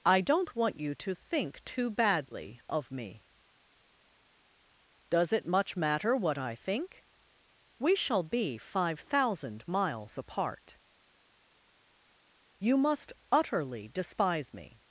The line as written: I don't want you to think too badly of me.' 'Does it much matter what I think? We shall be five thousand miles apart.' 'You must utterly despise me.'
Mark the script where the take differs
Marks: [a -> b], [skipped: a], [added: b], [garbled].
I don't want you to think too badly of me.' 'Does it much matter what I think? We shall be five thousand miles apart.' 'You must utterly despise me.'